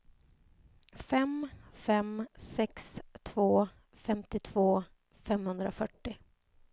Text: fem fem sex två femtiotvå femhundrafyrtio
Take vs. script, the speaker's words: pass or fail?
pass